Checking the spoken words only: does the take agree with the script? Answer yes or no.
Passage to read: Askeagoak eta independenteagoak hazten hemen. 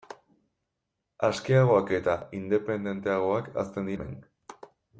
yes